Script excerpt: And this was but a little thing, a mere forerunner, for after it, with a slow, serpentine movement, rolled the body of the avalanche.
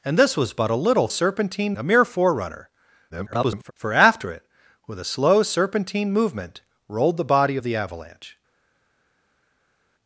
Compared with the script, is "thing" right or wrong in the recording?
wrong